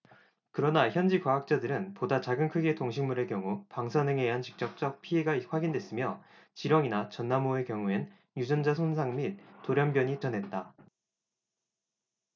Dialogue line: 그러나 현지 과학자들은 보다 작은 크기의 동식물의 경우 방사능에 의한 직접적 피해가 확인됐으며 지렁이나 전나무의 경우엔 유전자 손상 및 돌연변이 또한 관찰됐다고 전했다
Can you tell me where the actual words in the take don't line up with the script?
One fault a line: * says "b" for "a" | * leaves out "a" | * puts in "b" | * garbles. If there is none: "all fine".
* leaves out "또한 관찰됐다고"